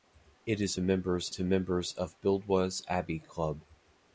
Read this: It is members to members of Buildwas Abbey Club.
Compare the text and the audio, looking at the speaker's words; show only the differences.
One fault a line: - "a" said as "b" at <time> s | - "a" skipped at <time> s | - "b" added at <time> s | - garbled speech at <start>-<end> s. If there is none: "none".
none